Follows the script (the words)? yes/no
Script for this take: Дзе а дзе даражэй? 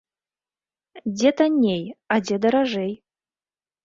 no